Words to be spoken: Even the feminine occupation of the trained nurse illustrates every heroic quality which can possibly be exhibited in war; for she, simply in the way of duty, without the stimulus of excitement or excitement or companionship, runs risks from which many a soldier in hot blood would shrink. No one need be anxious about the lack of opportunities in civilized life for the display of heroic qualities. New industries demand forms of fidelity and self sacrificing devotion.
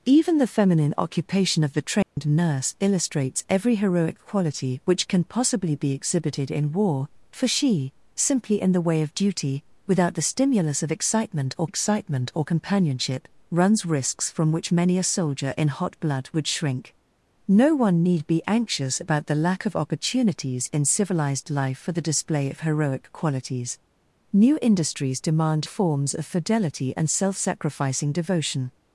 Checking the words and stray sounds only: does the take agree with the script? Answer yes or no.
no